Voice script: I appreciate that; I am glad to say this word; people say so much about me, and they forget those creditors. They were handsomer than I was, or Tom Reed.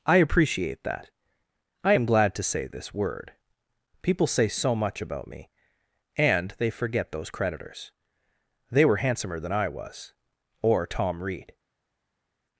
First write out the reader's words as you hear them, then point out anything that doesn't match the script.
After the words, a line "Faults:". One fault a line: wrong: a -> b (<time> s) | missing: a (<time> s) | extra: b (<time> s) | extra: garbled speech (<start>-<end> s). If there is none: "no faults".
I appreciate that; I am glad to say this word; people say so much about me, and they forget those creditors. They were handsomer than I was, or Tom Reed.
Faults:
no faults